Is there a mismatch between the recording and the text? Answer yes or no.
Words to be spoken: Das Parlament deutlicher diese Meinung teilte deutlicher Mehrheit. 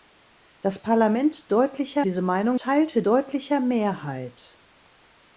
no